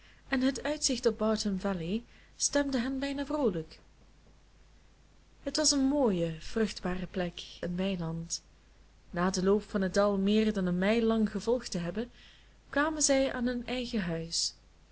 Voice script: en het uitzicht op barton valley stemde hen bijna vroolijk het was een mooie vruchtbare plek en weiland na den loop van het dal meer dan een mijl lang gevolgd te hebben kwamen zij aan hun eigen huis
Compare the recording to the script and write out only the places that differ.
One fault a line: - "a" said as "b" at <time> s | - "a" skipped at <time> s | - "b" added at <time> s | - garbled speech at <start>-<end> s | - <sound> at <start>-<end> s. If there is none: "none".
none